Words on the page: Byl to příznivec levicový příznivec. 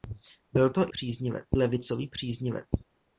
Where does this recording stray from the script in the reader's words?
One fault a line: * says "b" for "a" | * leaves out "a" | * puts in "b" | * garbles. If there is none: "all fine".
all fine